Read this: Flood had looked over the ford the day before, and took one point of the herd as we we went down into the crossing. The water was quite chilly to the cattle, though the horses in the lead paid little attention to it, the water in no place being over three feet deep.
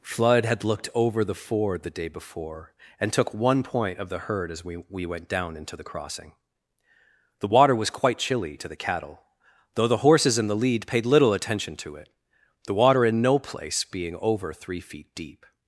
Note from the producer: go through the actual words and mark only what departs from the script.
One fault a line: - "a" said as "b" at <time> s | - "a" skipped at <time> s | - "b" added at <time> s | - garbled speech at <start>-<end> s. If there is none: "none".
none